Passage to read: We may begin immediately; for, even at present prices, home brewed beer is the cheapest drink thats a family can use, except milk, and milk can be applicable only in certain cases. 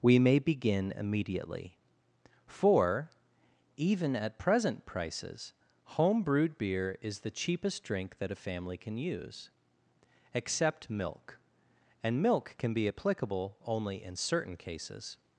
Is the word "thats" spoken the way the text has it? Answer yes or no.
no